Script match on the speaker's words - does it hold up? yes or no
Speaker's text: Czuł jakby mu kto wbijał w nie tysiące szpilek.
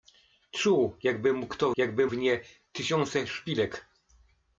no